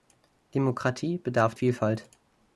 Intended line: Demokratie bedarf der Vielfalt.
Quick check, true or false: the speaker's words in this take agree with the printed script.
false